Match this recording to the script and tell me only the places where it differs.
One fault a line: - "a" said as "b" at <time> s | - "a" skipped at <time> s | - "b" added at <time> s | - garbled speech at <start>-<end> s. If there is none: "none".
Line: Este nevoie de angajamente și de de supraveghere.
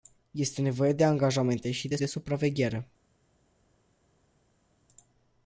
none